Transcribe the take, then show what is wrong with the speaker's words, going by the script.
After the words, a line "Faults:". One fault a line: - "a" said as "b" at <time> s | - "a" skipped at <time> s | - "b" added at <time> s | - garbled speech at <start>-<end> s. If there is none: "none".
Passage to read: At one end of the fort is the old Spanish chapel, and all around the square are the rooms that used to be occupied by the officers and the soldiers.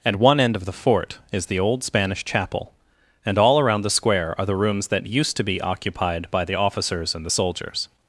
At one end of the fort is the old Spanish chapel, and all around the square are the rooms that used to be occupied by the officers and the soldiers.
Faults:
none